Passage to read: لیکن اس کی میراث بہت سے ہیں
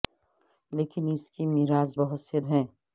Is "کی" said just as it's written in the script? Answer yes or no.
yes